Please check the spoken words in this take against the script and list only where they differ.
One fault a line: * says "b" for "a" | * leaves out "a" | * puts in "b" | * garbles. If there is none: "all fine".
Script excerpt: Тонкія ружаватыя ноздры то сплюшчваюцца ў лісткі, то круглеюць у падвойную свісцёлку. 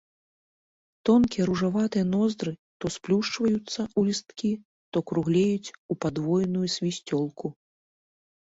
all fine